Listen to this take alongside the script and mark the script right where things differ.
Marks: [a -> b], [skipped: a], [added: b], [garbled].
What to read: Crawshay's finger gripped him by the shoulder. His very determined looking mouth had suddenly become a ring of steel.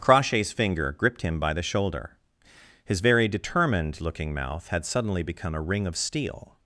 Crawshay's finger gripped him by the shoulder. His very determined looking mouth had suddenly become a ring of steel.